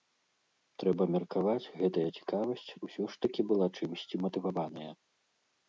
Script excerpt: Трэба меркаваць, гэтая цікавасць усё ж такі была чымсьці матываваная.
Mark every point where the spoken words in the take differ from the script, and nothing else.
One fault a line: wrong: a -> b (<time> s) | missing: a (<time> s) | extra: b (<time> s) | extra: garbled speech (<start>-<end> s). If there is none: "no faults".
no faults